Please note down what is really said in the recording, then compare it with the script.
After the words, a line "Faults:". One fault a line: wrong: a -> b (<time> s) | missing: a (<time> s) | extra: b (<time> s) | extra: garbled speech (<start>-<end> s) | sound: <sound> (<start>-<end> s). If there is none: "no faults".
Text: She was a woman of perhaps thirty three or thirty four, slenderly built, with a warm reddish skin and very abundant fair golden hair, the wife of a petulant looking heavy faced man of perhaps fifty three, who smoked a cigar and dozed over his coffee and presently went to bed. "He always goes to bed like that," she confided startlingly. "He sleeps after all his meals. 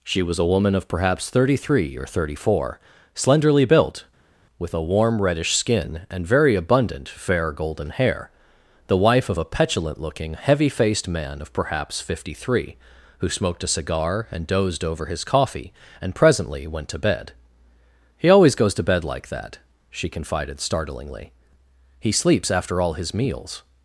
She was a woman of perhaps thirty three or thirty four, slenderly built, with a warm reddish skin and very abundant fair golden hair, the wife of a petulant looking heavy faced man of perhaps fifty three, who smoked a cigar and dozed over his coffee and presently went to bed. "He always goes to bed like that," she confided startlingly. "He sleeps after all his meals.
Faults:
no faults